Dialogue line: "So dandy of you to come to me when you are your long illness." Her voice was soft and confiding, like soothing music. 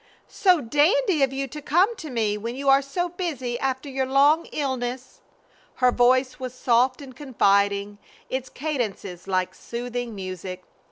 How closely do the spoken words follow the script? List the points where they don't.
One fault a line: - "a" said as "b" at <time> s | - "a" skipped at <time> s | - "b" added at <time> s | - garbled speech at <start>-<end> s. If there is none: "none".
- "so busy after" added at 2.8 s
- "its cadences" added at 8.3 s